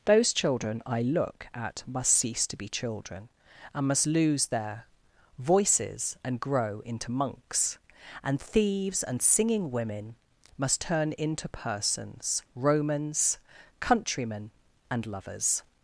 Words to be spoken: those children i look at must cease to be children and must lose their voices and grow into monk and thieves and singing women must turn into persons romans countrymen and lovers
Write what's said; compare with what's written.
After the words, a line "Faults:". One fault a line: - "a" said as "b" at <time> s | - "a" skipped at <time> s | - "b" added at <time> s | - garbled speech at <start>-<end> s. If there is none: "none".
those children i look at must cease to be children and must lose their voices and grow into monks and thieves and singing women must turn into persons romans countrymen and lovers
Faults:
- "monk" said as "monks" at 7.1 s